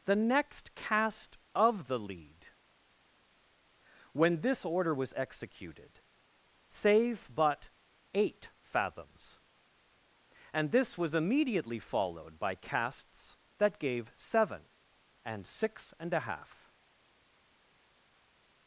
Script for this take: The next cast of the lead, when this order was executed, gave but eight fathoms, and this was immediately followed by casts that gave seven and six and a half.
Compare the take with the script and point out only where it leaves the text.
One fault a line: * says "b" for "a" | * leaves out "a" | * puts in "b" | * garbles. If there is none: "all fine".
* says "save" for "gave"